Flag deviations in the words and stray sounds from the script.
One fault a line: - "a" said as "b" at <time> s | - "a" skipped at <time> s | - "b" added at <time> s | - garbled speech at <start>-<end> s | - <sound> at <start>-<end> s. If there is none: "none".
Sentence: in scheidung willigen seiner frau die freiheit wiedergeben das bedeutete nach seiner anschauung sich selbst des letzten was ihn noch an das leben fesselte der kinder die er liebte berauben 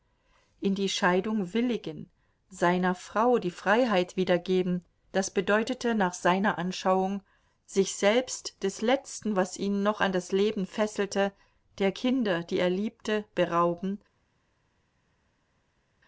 - "die" added at 0.7 s